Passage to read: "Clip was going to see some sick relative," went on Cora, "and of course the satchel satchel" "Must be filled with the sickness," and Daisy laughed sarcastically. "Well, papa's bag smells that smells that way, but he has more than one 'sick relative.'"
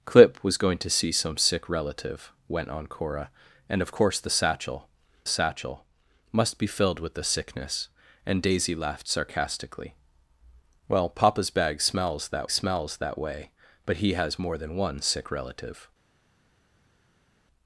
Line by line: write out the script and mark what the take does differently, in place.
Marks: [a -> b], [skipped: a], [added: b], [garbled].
"Clip was going to see some sick relative," went on Cora, "and of course the satchel satchel" "Must be filled with the sickness," and Daisy laughed sarcastically. "Well, papa's bag smells that smells that way, but he has more than one 'sick relative.'"